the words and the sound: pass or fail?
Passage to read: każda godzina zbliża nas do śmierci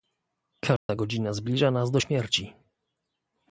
fail